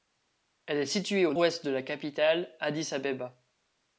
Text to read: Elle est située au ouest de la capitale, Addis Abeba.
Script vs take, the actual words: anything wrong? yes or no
no